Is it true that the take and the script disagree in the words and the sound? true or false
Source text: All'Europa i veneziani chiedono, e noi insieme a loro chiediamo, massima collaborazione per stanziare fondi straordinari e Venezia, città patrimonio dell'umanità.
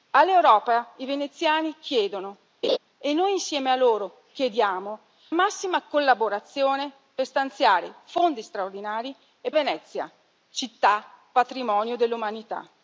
true